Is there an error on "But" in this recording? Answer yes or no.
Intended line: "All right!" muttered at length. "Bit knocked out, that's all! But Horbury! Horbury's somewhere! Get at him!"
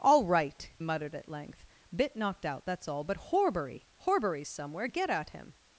no